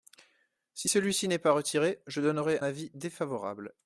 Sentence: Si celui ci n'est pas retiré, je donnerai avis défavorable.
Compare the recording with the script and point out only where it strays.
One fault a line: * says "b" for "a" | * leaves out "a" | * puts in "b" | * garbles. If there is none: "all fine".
all fine